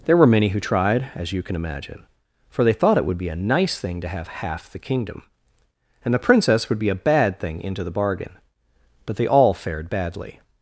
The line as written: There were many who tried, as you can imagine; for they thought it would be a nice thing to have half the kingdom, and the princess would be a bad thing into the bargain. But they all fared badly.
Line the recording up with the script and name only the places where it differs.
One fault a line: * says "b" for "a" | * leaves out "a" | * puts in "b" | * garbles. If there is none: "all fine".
all fine